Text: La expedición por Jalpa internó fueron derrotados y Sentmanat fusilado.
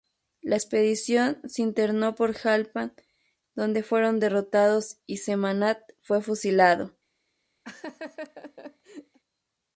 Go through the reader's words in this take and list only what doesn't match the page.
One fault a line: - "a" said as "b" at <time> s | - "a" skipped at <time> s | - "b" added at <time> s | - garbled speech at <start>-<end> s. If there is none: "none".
- "se internó" added at 1.4 s
- "internó" said as "donde" at 3.5 s
- "fue" added at 6.0 s